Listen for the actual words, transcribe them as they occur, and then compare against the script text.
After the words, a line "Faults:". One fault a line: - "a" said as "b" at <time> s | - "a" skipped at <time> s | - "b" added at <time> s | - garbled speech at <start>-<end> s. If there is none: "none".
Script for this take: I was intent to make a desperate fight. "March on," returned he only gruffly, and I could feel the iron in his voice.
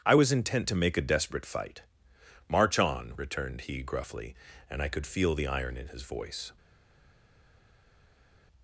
I was intent to make a desperate fight. "March on," returned he gruffly, and I could feel the iron in his voice.
Faults:
- "only" skipped at 3.8 s